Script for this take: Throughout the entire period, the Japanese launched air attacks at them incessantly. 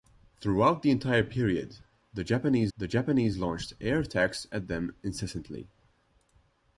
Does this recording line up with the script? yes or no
no